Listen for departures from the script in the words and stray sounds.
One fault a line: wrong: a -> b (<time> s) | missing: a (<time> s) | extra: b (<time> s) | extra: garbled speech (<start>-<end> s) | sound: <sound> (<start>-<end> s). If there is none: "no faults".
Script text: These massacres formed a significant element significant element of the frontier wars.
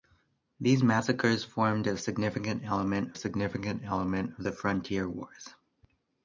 no faults